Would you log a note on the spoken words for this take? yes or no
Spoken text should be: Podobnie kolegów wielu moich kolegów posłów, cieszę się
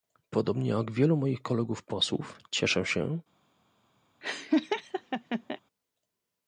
yes